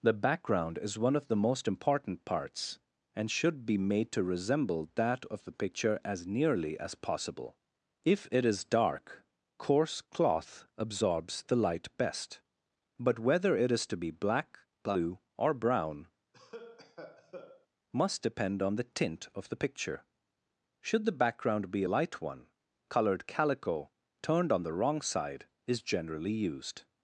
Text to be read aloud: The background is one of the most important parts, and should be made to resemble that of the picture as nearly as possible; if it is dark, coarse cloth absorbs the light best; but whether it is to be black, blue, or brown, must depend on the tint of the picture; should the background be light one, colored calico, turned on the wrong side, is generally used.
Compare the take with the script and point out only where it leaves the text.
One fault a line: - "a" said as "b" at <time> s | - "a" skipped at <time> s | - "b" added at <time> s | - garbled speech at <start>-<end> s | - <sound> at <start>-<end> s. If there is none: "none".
- cough at 16.3-17.7 s